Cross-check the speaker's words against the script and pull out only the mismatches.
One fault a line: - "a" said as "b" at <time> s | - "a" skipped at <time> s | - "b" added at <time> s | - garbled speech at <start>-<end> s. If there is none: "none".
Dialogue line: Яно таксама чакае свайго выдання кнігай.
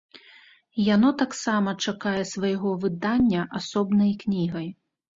- "асобнай" added at 3.6 s